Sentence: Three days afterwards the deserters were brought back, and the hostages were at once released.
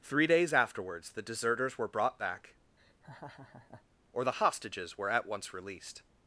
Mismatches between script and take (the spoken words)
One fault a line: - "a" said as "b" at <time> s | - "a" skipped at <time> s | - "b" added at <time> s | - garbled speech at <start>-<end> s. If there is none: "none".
- "and" said as "or" at 4.1 s